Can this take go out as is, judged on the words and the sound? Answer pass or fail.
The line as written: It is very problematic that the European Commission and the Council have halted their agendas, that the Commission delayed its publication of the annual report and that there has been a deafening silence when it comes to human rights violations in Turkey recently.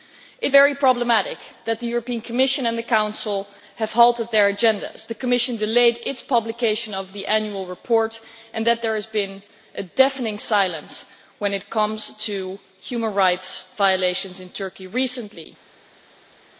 fail